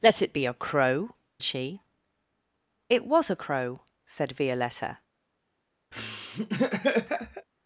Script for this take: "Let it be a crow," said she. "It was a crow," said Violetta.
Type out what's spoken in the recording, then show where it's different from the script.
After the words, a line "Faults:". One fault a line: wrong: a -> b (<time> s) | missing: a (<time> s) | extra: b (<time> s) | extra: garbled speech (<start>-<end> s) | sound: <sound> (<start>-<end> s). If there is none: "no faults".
"Let it be a crow," she. "It was a crow," said Violetta.
Faults:
missing: said (1.1 s)
sound: laugh (5.9-7.5 s)